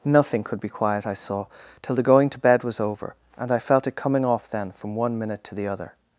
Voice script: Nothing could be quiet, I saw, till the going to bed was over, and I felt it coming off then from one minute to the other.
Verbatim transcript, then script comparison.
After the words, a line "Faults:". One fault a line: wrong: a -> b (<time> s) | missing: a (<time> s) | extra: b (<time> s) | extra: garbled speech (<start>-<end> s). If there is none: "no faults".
Nothing could be quiet, I saw, till the going to bed was over, and I felt it coming off then from one minute to the other.
Faults:
no faults